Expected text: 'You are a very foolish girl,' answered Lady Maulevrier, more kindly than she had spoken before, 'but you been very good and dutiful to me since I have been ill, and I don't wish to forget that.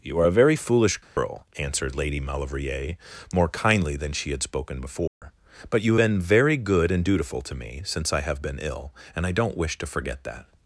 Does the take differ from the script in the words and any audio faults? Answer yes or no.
yes